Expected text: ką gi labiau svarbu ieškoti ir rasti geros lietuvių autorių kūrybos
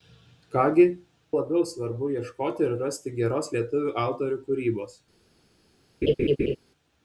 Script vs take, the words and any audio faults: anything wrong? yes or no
yes